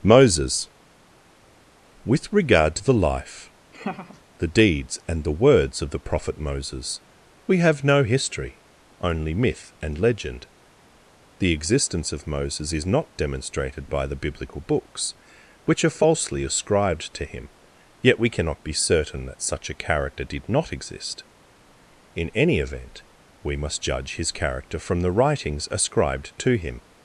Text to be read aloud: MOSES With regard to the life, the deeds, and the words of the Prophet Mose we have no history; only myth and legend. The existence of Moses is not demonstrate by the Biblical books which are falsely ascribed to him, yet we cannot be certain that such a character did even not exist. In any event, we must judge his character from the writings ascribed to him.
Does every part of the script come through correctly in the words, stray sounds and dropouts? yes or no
no